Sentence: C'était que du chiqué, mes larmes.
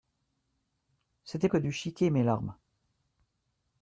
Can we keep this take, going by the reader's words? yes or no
yes